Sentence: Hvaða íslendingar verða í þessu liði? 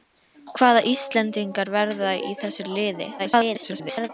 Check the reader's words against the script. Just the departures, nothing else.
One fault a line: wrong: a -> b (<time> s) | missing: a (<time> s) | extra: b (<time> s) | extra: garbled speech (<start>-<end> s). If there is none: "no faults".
extra: garbled speech (3.2-4.1 s)